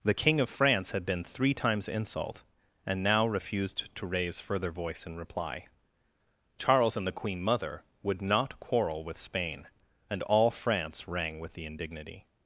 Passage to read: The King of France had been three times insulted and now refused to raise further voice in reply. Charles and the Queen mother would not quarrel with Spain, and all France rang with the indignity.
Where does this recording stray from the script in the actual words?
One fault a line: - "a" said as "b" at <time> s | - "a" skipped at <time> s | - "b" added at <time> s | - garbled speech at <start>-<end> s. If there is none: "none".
- "insulted" said as "insult" at 1.9 s